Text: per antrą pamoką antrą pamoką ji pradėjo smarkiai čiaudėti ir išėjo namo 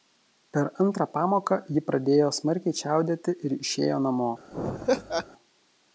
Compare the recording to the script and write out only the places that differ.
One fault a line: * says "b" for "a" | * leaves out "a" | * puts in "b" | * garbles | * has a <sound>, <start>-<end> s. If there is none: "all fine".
* leaves out "antrą pamoką"
* has a laugh, 4.5-5.3 s